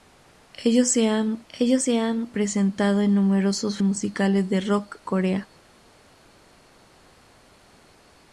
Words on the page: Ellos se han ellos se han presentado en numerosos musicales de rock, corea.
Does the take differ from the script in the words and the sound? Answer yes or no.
no